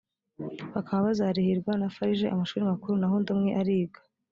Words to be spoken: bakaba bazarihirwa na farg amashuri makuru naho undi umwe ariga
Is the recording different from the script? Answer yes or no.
no